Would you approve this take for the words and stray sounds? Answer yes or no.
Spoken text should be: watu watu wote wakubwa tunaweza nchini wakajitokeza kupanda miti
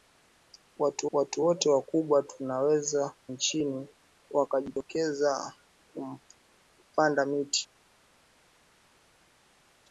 yes